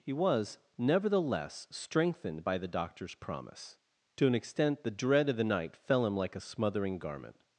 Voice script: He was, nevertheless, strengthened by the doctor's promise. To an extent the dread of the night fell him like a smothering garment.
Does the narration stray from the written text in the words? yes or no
no